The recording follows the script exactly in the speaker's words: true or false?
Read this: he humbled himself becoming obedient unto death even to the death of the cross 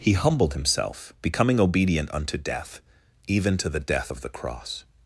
true